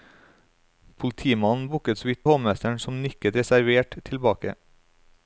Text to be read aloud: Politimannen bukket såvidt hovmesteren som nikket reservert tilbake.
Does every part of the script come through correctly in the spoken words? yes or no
yes